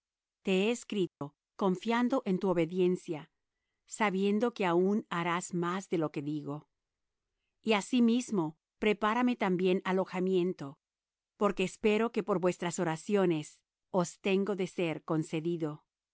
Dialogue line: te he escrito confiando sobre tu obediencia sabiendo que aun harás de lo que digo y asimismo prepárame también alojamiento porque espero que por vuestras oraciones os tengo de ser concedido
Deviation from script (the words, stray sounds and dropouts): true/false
true